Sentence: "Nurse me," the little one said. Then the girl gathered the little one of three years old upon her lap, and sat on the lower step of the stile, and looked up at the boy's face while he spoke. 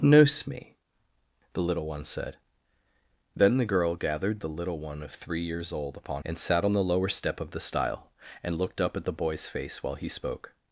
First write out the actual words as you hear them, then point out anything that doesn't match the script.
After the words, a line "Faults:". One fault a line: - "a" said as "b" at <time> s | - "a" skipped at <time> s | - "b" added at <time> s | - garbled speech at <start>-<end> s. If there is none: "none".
"Nurse me," the little one said. Then the girl gathered the little one of three years old upon and sat on the lower step of the stile, and looked up at the boy's face while he spoke.
Faults:
- "her lap" skipped at 6.2 s